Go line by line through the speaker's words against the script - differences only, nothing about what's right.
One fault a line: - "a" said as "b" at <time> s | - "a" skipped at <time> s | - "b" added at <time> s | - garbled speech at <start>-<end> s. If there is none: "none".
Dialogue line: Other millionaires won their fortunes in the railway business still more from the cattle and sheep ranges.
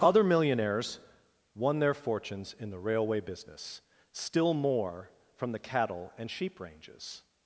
none